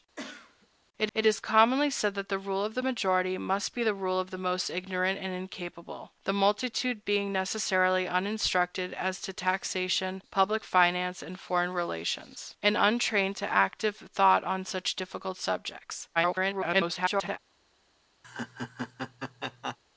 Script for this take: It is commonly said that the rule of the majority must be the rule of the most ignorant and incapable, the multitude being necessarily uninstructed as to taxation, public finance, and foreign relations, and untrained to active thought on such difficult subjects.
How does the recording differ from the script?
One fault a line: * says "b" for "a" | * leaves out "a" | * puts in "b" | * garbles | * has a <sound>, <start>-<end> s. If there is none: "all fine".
* has a cough, 0.2-0.7 s
* puts in "it"
* garbles
* has a laugh, 18.2-19.8 s